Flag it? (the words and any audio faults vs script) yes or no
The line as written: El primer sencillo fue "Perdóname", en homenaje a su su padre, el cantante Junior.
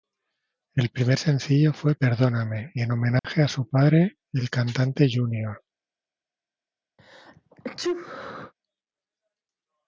yes